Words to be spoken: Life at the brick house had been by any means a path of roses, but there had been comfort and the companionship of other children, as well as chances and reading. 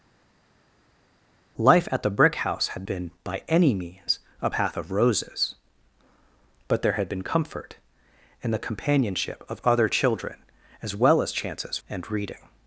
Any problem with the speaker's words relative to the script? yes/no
no